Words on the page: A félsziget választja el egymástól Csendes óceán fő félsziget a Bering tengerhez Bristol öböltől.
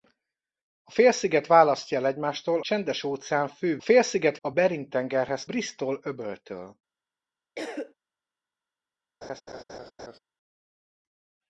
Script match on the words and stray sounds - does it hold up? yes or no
no